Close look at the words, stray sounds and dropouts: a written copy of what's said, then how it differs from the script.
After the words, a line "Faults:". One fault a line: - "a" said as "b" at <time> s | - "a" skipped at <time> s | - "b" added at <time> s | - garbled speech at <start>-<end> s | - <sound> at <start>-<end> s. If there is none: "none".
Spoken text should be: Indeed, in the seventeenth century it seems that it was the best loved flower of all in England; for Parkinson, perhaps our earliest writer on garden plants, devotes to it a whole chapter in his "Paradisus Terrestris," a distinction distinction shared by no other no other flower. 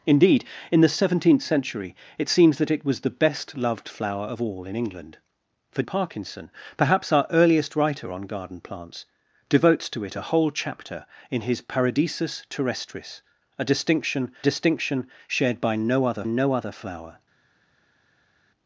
Indeed, in the seventeenth century it seems that it was the best loved flower of all in England; for Parkinson, perhaps our earliest writer on garden plants, devotes to it a whole chapter in his "Paradisus Terrestris," a distinction distinction shared by no other no other flower.
Faults:
none